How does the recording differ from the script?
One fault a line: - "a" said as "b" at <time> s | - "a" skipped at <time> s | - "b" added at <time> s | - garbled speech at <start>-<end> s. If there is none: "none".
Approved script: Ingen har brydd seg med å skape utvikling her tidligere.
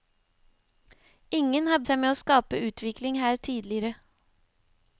- "brydd" skipped at 1.8 s